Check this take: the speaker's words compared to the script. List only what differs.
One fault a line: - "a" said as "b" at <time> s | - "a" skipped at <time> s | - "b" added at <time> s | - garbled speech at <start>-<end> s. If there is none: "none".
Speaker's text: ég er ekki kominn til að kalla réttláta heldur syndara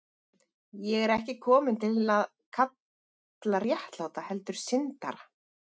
none